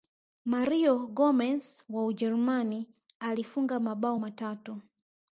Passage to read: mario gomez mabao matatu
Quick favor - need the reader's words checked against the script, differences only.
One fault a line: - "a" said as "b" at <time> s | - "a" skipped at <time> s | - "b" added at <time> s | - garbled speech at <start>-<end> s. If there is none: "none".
- "wa ujerumani alifunga" added at 1.9 s